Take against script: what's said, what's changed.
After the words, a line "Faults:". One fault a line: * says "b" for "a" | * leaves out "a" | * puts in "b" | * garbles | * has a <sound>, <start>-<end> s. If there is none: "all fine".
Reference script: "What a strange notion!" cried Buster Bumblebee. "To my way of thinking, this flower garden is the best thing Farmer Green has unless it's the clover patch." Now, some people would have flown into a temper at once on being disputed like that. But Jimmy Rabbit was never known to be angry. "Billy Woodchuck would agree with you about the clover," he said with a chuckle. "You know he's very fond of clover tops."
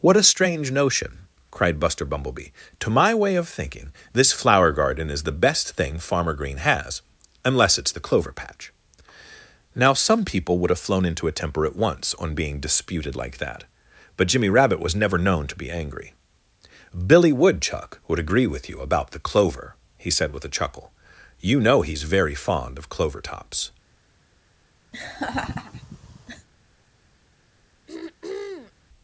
"What a strange notion!" cried Buster Bumblebee. "To my way of thinking, this flower garden is the best thing Farmer Green has unless it's the clover patch." Now, some people would have flown into a temper at once on being disputed like that. But Jimmy Rabbit was never known to be angry. "Billy Woodchuck would agree with you about the clover," he said with a chuckle. "You know he's very fond of clover tops."
Faults:
* has a laugh, 24.9-26.5 s
* has a throat clearing, 27.9-28.7 s